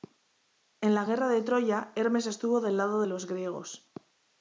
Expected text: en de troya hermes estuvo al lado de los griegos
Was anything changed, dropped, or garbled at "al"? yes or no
yes